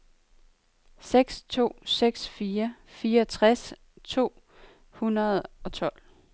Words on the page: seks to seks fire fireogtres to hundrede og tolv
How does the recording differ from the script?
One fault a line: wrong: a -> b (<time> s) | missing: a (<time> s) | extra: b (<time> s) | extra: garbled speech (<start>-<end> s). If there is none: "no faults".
no faults